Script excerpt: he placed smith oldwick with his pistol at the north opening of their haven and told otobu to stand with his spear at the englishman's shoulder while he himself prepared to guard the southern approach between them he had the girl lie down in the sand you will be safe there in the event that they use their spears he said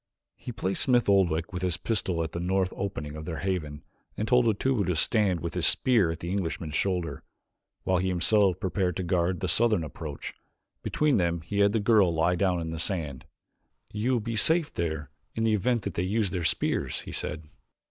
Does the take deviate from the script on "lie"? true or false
false